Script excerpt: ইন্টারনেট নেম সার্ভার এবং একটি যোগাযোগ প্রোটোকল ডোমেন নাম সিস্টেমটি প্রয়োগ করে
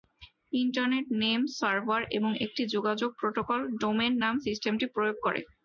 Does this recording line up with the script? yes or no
yes